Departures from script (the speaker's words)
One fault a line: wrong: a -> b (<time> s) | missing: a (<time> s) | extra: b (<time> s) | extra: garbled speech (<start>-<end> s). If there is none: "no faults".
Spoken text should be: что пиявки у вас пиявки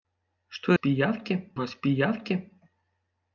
no faults